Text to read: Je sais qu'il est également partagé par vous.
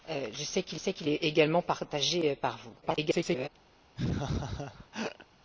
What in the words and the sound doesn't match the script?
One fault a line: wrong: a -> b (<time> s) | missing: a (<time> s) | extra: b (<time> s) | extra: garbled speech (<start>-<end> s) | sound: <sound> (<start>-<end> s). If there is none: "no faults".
extra: sais qu'il (0.7 s)
extra: garbled speech (2.8-3.5 s)
sound: laugh (4.0-5.3 s)